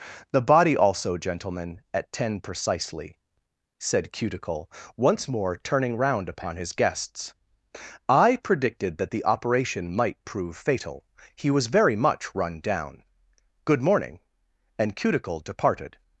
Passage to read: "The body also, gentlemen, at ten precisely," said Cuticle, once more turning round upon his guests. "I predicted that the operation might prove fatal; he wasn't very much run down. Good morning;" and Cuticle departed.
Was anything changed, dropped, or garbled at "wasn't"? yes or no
yes